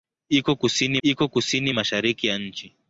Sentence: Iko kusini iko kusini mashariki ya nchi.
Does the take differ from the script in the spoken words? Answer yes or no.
no